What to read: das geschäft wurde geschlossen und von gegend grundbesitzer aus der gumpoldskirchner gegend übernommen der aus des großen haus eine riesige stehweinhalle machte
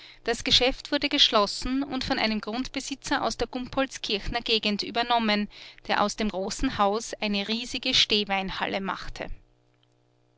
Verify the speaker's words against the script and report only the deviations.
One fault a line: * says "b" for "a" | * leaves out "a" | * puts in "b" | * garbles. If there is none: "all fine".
* says "einem" for "gegend"
* says "dem" for "des"